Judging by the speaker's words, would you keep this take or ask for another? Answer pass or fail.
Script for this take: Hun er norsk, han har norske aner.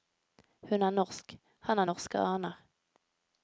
pass